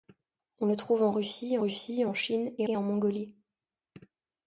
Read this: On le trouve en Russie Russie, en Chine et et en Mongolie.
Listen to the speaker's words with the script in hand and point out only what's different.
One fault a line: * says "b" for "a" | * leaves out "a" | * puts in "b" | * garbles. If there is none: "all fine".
all fine